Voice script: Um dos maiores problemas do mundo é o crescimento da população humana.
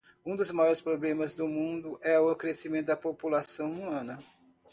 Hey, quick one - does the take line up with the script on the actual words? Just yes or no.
yes